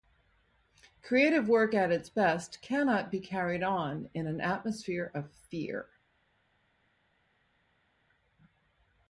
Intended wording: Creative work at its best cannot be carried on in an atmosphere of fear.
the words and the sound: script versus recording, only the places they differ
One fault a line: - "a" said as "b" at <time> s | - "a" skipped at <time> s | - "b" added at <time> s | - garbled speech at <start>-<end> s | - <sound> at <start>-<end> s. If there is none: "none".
none